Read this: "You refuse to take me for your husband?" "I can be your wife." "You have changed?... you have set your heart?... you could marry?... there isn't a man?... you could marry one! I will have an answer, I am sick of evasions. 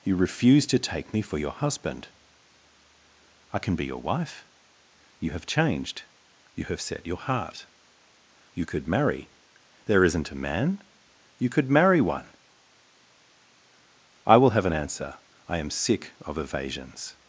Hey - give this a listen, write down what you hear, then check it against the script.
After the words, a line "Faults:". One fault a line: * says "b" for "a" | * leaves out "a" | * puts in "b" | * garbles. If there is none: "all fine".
"You refuse to take me for your husband?" "I can be your wife." "You have changed?... you have set your heart?... you could marry?... there isn't a man?... you could marry one! I will have an answer, I am sick of evasions.
Faults:
all fine